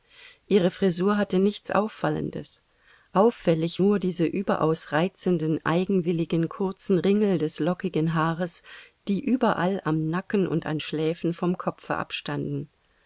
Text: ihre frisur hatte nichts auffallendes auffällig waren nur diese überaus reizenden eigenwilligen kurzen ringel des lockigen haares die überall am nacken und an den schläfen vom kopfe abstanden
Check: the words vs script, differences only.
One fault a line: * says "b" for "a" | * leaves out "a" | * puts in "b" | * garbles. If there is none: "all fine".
* leaves out "waren"
* leaves out "den"